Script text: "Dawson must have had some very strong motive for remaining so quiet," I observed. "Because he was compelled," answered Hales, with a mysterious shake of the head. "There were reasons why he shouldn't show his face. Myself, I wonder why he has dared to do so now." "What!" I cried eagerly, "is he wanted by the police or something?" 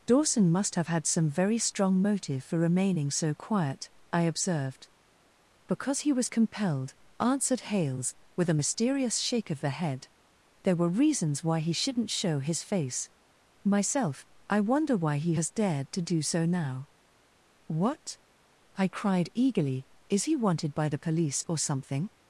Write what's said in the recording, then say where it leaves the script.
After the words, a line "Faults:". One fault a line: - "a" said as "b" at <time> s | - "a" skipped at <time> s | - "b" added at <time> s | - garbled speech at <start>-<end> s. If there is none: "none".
"Dawson must have had some very strong motive for remaining so quiet," I observed. "Because he was compelled," answered Hales, with a mysterious shake of the head. "There were reasons why he shouldn't show his face. Myself, I wonder why he has dared to do so now." "What!" I cried eagerly, "is he wanted by the police or something?"
Faults:
none